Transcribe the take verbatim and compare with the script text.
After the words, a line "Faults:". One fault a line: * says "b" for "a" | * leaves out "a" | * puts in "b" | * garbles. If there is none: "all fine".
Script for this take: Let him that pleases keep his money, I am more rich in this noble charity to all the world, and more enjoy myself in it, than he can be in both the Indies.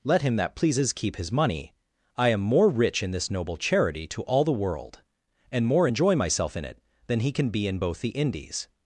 Let him that pleases keep his money, I am more rich in this noble charity to all the world, and more enjoy myself in it, than he can be in both the Indies.
Faults:
all fine